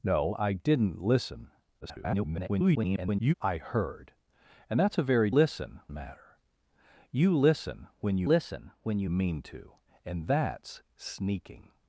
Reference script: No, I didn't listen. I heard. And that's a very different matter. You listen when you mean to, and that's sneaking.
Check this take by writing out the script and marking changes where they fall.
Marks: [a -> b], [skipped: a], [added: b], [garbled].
No, I didn't listen. [garbled] I heard. And that's a very [different -> listen] matter. You listen when you [added: listen when you] mean to, and that's sneaking.